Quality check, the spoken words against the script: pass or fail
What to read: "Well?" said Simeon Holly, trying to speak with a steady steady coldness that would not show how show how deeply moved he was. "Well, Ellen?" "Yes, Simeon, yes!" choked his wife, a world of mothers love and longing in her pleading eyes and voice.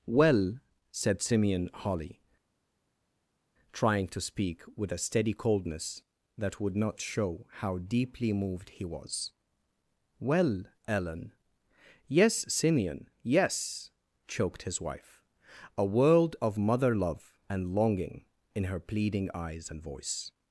fail